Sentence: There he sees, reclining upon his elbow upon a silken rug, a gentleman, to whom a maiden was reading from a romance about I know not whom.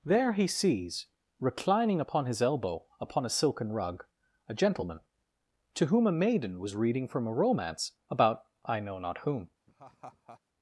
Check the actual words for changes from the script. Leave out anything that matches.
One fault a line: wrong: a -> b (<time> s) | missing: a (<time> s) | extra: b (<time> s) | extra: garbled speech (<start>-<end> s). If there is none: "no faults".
no faults